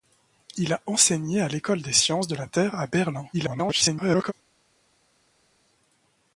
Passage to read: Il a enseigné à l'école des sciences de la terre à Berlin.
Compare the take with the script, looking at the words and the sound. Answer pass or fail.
fail